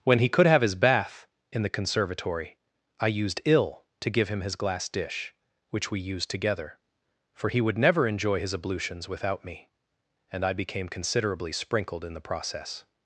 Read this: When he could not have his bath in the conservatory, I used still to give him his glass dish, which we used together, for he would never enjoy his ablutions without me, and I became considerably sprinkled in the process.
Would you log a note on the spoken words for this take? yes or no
yes